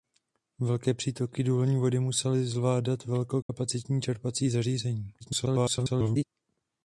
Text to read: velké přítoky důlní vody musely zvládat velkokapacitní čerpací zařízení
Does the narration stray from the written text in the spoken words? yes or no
yes